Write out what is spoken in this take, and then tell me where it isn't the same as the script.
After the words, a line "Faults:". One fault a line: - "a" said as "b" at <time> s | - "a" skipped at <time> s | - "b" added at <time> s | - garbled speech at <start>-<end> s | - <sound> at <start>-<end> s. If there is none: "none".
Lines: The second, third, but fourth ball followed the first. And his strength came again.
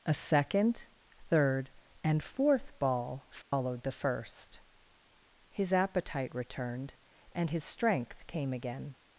A second, third, and fourth ball followed the first. His appetite returned, and his strength came again.
Faults:
- "The" said as "A" at 0.0 s
- "but" said as "and" at 2.0 s
- dropout at 3.4-3.5 s
- "His appetite returned" added at 5.5 s